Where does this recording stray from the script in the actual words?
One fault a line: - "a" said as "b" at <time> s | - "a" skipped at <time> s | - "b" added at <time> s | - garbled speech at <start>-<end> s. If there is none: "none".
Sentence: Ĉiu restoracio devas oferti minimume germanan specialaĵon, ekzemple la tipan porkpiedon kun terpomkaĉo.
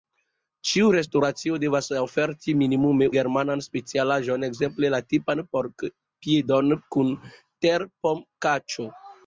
none